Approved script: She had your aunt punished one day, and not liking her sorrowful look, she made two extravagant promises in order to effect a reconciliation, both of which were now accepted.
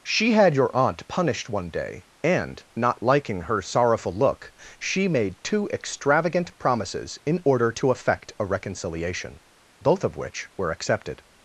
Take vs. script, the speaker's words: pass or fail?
fail